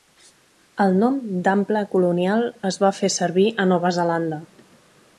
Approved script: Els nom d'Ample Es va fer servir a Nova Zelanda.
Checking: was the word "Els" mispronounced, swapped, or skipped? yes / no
yes